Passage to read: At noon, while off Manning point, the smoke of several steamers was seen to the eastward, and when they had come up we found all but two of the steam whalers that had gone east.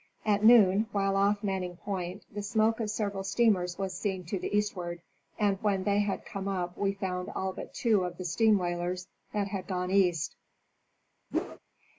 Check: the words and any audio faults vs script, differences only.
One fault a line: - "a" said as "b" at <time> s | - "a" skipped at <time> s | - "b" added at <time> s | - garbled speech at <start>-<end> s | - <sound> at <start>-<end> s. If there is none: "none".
- whoosh at 11.3-11.6 s